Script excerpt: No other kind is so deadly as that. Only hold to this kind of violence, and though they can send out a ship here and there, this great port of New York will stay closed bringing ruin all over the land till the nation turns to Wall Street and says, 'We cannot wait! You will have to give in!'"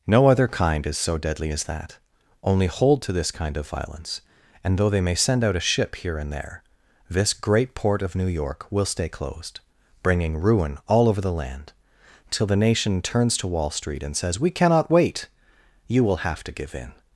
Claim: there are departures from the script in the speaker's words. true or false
true